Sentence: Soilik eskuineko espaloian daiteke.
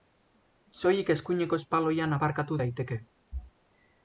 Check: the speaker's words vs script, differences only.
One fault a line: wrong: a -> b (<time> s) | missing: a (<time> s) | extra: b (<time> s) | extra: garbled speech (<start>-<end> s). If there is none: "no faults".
extra: aparkatu (2.2 s)